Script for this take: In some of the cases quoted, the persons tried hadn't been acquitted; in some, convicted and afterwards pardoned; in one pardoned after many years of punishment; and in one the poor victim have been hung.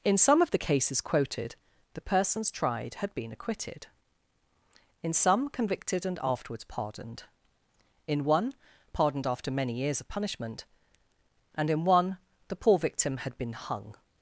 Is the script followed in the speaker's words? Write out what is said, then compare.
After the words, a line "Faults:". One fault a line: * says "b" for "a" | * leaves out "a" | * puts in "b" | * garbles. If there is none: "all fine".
In some of the cases quoted, the persons tried had been acquitted; in some, convicted and afterwards pardoned; in one pardoned after many years of punishment; and in one the poor victim had been hung.
Faults:
* says "had" for "hadn't"
* says "had" for "have"